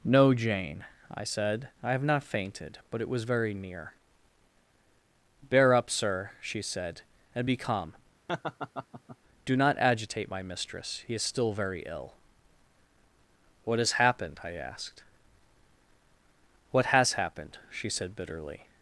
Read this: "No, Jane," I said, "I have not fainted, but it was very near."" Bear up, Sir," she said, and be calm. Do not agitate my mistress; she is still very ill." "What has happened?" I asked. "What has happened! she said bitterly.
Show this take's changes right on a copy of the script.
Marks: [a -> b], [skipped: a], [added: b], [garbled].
"No, Jane," I said, "I have not fainted, but it was very near."" Bear up, Sir," she said, and be calm. Do not agitate my mistress; [she -> he] is still very ill." "What has happened?" I asked. "What has happened! she said bitterly.